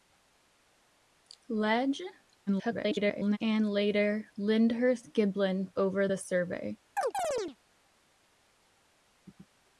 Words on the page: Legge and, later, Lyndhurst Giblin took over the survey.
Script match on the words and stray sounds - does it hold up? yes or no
no